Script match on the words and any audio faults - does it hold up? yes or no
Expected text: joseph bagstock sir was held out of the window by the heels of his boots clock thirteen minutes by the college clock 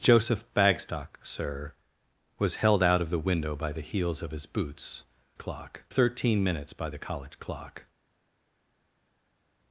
yes